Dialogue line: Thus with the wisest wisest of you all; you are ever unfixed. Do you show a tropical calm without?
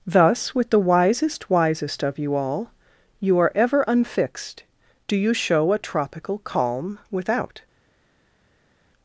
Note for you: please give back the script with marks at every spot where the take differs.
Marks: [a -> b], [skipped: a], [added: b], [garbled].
Thus with the wisest wisest of you all; you are ever unfixed. Do you show a tropical calm without?